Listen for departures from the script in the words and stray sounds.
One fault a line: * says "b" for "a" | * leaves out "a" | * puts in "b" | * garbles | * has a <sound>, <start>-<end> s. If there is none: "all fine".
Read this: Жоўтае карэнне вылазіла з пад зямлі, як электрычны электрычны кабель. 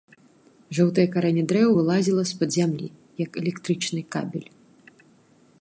* puts in "дрэў"
* leaves out "электрычны"